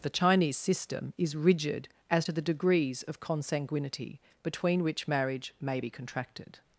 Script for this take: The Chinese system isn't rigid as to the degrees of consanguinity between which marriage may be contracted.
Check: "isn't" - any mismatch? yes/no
yes